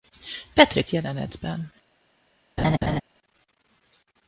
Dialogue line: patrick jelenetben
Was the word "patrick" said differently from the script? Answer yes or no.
no